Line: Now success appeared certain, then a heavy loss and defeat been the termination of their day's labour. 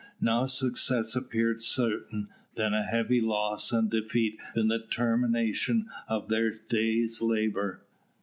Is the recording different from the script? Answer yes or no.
no